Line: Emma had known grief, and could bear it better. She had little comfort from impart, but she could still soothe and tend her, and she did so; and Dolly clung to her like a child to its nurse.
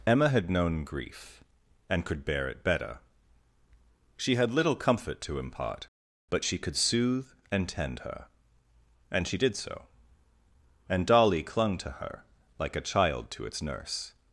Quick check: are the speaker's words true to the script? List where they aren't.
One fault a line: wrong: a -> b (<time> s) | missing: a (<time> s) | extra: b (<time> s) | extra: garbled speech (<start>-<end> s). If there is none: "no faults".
wrong: from -> to (5.2 s)
missing: still (6.8 s)